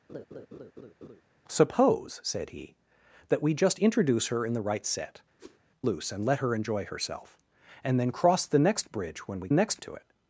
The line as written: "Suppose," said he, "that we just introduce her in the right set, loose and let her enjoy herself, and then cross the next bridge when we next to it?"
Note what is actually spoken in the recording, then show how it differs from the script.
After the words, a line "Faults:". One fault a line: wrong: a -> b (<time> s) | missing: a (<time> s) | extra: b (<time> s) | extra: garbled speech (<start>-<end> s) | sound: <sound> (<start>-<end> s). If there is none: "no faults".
"Suppose," said he, "that we just introduce her in the right set, loose and let her enjoy herself, and then cross the next bridge when we next to it?"
Faults:
sound: laugh (0.1-1.2 s)
sound: whoosh (5.4-5.6 s)